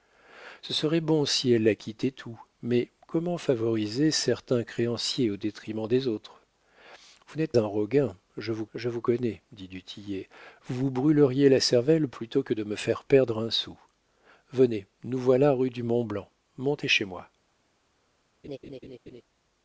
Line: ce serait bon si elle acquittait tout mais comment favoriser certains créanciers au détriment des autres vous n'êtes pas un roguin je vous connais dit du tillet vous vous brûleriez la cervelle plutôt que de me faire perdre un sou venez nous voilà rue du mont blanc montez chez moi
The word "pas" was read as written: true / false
false